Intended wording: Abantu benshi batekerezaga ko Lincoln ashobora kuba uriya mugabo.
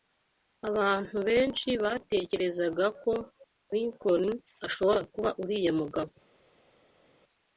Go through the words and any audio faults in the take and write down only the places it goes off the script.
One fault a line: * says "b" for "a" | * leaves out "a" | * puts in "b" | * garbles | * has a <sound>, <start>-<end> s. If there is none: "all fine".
all fine